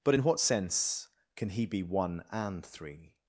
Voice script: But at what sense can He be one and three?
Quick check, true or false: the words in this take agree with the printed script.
false